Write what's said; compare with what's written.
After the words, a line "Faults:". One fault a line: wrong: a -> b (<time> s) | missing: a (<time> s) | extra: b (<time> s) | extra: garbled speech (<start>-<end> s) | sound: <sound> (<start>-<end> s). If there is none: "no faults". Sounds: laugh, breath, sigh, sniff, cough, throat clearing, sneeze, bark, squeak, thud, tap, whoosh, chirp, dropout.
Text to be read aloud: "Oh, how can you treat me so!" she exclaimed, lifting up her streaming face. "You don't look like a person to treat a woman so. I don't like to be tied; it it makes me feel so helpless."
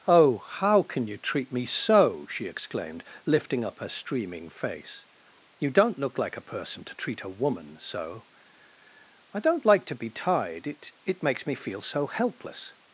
"Oh, how can you treat me so!" she exclaimed, lifting up her streaming face. "You don't look like a person to treat a woman so. I don't like to be tied; it it makes me feel so helpless."
Faults:
no faults